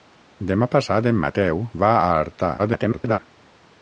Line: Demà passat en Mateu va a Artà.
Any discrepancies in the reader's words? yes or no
yes